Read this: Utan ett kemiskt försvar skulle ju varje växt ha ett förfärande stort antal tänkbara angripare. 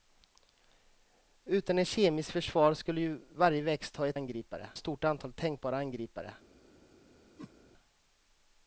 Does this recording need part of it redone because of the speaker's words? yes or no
yes